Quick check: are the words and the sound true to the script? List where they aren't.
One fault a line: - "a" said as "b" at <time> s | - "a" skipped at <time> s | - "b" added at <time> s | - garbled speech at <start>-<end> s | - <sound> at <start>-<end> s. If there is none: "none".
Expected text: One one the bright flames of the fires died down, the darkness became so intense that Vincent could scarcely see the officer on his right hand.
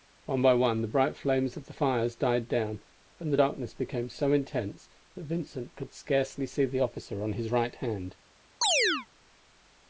- "by" added at 0.4 s
- "and" added at 3.2 s
- chirp at 8.6-9.1 s